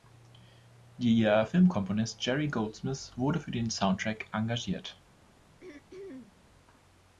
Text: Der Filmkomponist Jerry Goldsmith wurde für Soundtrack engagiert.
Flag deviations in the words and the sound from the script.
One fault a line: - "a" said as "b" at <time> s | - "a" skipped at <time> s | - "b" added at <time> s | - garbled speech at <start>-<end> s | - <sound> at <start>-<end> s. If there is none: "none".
- "den" added at 3.5 s
- throat clearing at 5.6-6.4 s